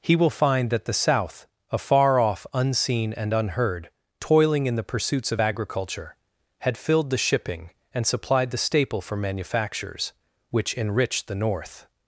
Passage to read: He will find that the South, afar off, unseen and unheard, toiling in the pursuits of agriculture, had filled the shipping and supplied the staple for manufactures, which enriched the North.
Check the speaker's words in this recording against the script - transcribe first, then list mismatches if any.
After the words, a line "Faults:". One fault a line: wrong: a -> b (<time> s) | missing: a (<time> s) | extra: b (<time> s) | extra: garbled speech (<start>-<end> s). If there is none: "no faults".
He will find that the South, afar off, unseen and unheard, toiling in the pursuits of agriculture, had filled the shipping and supplied the staple for manufactures, which enriched the North.
Faults:
no faults